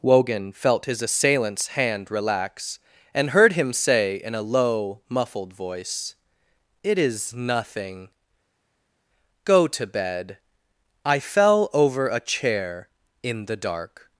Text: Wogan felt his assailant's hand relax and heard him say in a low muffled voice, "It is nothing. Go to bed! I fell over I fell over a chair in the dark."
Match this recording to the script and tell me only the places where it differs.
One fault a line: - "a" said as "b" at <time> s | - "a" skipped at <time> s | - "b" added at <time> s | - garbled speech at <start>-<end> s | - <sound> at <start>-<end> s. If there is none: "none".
- "I fell over" skipped at 12.1 s